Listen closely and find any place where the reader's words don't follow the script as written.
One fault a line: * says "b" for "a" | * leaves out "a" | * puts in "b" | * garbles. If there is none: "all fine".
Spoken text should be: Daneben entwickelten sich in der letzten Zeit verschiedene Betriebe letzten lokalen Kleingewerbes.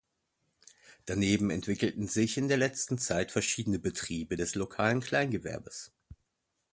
* says "des" for "letzten"